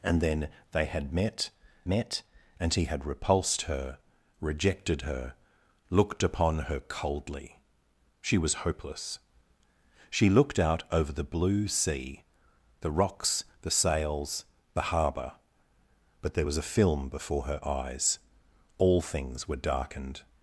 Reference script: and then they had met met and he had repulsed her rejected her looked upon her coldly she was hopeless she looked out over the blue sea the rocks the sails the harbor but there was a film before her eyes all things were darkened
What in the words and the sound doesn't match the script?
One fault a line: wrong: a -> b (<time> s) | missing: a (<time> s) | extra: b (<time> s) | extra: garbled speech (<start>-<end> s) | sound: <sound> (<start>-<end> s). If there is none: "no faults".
no faults